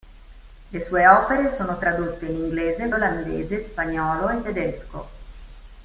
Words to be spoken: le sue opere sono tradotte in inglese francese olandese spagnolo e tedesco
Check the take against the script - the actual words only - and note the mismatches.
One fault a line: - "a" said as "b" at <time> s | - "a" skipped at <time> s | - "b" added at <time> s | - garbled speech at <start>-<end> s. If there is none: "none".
- "francese" skipped at 2.9 s